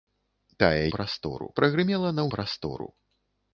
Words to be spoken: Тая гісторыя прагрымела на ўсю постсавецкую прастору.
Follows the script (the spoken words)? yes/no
no